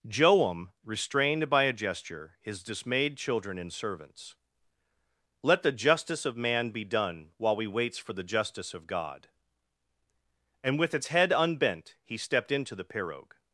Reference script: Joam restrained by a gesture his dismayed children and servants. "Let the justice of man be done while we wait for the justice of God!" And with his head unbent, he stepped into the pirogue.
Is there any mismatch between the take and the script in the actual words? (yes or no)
yes